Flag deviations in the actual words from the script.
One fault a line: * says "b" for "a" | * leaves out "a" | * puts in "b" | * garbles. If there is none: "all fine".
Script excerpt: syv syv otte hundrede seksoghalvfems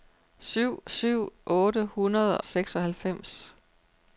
all fine